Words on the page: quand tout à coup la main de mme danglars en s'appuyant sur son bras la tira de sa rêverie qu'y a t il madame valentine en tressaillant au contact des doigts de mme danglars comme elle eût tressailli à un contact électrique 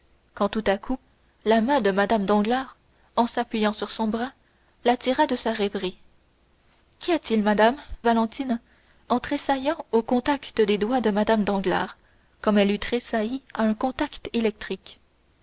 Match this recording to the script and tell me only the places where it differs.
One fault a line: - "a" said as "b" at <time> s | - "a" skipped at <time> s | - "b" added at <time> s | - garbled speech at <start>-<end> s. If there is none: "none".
none